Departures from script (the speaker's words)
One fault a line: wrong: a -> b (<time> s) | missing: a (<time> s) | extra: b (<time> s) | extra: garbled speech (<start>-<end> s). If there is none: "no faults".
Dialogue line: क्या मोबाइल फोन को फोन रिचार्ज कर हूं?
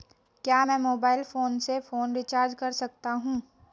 extra: मैं (0.6 s)
wrong: को -> से (1.6 s)
extra: सकता (2.7 s)